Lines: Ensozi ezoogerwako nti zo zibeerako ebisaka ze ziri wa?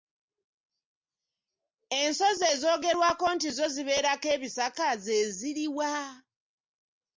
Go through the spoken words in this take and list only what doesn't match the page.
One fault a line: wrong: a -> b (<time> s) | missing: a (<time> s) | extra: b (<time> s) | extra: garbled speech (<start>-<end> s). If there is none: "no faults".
no faults